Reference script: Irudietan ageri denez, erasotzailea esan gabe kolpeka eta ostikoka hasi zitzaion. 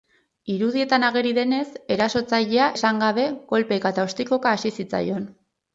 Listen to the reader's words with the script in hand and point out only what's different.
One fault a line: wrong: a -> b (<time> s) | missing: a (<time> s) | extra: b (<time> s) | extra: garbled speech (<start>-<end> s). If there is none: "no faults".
no faults